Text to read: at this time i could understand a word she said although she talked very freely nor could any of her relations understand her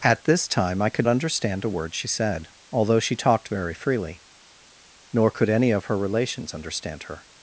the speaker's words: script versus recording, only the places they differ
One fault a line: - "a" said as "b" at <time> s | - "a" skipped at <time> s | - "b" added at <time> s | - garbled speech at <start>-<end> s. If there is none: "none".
none